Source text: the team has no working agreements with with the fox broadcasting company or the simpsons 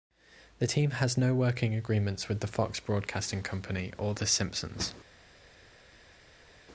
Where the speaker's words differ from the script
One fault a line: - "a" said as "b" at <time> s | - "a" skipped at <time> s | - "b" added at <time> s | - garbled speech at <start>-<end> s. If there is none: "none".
- "with" skipped at 2.4 s